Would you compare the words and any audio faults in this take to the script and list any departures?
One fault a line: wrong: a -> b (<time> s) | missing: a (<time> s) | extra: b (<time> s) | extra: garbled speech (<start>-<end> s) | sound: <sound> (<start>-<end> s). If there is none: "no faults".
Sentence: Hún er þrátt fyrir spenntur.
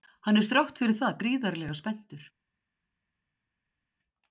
wrong: Hún -> Hann (0.3 s)
extra: það gríðarlega (1.0 s)